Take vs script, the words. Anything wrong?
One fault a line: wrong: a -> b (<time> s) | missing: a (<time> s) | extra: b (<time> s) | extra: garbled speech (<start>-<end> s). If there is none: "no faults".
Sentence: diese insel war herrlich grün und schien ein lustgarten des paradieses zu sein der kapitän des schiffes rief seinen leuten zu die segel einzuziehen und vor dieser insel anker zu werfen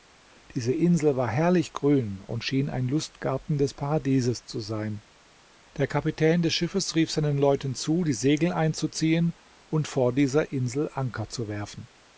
no faults